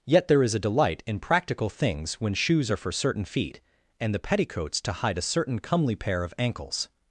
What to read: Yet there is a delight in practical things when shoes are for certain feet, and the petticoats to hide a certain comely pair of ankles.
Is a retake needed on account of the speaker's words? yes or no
no